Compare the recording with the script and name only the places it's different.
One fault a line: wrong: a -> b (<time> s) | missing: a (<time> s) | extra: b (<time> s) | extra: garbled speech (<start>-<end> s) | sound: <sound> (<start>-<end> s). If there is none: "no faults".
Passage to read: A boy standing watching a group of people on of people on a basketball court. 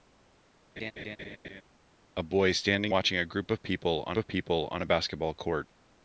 sound: laugh (0.8-1.6 s)